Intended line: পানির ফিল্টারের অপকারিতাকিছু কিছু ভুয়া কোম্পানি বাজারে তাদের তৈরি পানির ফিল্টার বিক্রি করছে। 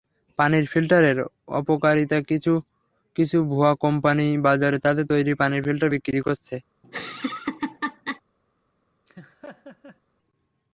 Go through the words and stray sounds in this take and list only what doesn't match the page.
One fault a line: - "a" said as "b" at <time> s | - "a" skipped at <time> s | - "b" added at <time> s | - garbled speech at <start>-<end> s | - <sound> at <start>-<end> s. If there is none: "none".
- laugh at 6.8-8.2 s
- laugh at 9.1-10.0 s